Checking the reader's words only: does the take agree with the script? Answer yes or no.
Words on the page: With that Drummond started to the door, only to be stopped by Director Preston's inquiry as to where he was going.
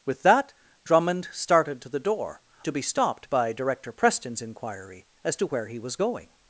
no